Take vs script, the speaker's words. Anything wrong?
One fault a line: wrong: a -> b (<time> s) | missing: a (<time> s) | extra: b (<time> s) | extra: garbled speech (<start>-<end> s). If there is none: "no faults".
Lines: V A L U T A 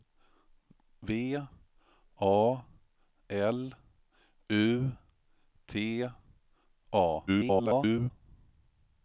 extra: garbled speech (7.3-8.1 s)